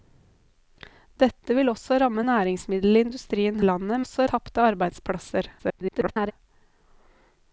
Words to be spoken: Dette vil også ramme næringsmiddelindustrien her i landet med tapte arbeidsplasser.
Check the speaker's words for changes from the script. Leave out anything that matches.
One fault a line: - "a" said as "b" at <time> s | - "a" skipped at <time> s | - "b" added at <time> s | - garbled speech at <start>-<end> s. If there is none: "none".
- "her" skipped at 3.6 s
- "med" said as "også" at 4.0 s
- garbled speech at 5.6-6.3 s